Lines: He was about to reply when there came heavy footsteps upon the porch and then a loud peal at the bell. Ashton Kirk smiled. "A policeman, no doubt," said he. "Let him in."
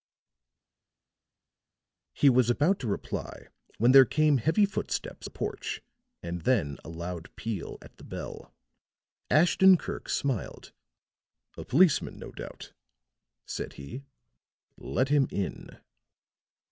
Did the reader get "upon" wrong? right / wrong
wrong